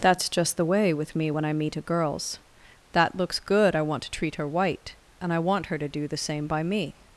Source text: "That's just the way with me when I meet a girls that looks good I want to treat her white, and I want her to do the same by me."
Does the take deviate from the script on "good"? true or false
false